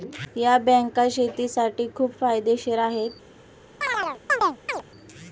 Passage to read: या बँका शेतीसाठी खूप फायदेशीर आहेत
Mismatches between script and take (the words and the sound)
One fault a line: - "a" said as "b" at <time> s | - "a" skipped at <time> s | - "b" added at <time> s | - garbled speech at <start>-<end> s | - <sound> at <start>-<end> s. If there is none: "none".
- chirp at 3.8-4.8 s